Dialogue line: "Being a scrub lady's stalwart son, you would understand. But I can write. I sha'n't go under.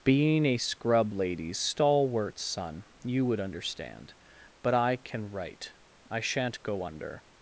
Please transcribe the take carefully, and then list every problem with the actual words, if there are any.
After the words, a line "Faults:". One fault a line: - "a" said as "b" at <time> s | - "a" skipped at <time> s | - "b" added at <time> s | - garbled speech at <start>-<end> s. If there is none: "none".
"Being a scrub lady's stalwart son, you would understand. But I can write. I sha'n't go under.
Faults:
none